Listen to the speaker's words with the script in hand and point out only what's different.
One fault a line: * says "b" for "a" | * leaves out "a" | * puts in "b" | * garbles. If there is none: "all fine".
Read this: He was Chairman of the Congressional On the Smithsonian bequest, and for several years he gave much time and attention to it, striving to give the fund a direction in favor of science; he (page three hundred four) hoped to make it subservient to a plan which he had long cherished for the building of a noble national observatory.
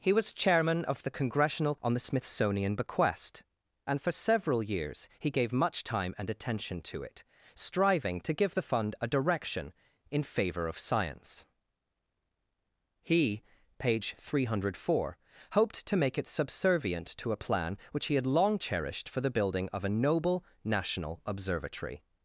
all fine